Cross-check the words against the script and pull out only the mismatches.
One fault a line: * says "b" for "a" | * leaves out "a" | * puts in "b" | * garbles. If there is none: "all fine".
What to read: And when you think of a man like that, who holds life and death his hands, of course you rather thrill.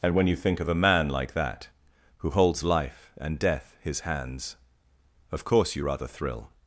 all fine